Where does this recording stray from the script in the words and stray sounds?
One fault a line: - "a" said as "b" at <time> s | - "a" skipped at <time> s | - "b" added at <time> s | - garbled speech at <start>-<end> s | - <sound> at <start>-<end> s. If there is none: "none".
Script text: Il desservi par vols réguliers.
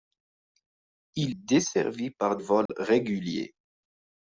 - dropout at 2.7-2.7 s